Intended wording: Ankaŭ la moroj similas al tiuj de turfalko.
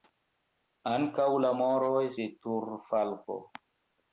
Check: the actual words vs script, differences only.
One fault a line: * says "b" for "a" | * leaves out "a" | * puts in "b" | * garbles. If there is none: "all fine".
* leaves out "similas al tiuj"